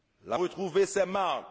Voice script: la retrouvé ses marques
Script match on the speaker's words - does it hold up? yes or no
yes